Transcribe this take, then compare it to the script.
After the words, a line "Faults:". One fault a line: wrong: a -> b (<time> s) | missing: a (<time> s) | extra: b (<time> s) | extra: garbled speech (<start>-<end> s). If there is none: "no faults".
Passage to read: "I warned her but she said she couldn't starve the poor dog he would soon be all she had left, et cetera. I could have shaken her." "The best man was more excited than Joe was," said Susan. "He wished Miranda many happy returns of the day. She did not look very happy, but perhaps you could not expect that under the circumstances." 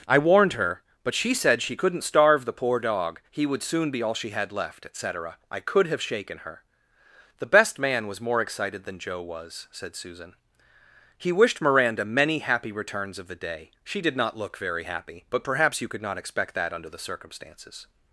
"I warned her but she said she couldn't starve the poor dog he would soon be all she had left, et cetera. I could have shaken her." "The best man was more excited than Joe was," said Susan. "He wished Miranda many happy returns of the day. She did not look very happy, but perhaps you could not expect that under the circumstances."
Faults:
no faults